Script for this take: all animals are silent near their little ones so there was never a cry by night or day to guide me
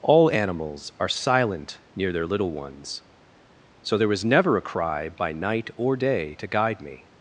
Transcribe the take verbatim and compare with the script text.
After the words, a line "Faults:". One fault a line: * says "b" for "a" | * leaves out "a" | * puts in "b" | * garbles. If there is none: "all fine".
all animals are silent near their little ones so there was never a cry by night or day to guide me
Faults:
all fine